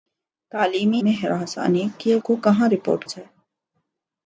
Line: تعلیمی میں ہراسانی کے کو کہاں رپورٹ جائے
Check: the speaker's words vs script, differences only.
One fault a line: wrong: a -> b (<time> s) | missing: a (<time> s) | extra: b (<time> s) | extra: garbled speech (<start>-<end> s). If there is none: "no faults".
no faults